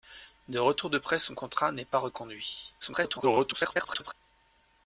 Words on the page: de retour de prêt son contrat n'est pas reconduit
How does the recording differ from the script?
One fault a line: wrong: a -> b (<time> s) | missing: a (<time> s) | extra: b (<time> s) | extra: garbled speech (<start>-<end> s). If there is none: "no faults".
extra: garbled speech (2.8-4.1 s)